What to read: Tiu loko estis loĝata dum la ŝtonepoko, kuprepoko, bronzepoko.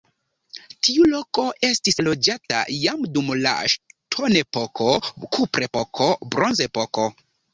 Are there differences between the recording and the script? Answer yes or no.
yes